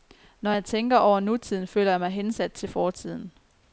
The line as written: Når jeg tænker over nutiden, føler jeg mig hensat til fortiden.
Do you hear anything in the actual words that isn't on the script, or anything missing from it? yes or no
no